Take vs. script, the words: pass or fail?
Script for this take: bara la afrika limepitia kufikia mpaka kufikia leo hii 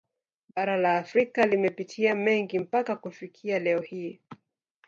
fail